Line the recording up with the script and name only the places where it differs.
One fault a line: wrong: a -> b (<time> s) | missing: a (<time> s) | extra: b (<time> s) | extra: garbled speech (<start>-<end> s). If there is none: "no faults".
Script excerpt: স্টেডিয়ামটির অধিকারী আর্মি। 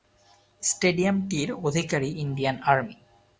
extra: ইন্ডিয়ান (2.1 s)